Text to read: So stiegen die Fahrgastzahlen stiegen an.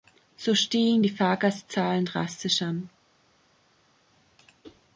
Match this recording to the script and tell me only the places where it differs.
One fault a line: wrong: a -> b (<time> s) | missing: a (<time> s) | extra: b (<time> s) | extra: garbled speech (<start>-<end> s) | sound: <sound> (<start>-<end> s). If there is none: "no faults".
wrong: stiegen -> drastisch (2.0 s)